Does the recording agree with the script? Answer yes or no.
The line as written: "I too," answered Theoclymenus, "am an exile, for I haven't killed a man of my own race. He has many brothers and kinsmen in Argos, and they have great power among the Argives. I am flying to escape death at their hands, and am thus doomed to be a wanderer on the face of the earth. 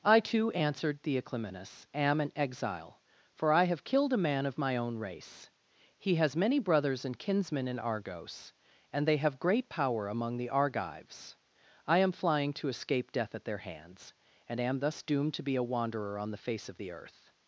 no